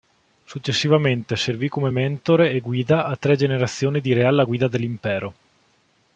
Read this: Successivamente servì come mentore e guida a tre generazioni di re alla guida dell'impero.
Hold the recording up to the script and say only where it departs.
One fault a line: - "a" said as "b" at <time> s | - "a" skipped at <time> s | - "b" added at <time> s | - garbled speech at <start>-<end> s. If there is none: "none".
none